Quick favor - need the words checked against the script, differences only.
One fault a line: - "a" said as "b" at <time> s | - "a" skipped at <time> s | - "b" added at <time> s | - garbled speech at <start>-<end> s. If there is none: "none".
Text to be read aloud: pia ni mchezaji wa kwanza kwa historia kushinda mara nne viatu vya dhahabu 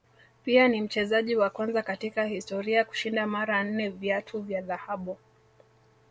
- "kwa" said as "katika" at 1.8 s